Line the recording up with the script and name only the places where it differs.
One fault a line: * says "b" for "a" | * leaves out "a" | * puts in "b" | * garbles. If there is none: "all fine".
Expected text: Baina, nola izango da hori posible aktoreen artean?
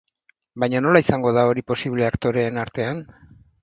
all fine